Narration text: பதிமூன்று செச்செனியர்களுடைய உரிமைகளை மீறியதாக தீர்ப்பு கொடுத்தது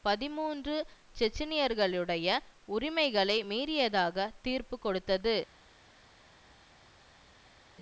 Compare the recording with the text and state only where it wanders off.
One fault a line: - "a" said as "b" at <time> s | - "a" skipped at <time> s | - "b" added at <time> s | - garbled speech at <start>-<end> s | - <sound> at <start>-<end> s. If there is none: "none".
none